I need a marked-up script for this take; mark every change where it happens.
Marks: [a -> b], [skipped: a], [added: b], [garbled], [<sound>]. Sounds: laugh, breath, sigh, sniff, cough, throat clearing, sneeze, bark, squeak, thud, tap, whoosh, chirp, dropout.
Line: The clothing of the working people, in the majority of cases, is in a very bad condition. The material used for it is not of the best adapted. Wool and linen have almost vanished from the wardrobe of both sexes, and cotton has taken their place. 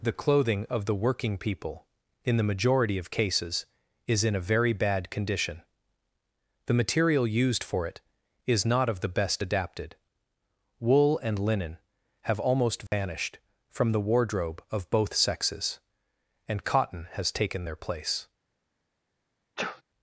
The clothing of the working people, in the majority of cases, is in a very bad condition. The material used for it is not of the best adapted. Wool and linen have almost vanished [dropout] from the wardrobe of both sexes, and cotton has taken their place. [sneeze]